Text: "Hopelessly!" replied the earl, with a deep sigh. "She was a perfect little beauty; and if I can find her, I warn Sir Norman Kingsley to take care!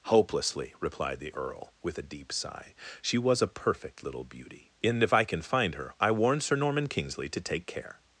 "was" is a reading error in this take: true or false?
false